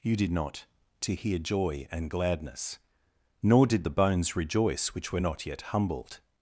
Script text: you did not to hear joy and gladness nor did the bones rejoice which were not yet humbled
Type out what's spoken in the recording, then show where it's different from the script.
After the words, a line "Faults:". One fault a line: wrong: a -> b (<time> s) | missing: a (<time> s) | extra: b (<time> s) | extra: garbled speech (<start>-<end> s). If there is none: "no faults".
you did not to hear joy and gladness nor did the bones rejoice which were not yet humbled
Faults:
no faults